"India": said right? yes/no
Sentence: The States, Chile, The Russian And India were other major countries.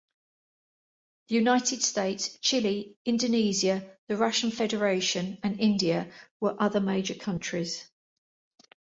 yes